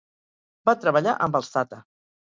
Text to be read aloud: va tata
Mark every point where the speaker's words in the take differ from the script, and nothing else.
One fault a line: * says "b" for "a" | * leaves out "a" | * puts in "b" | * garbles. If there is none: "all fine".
* puts in "treballar amb els"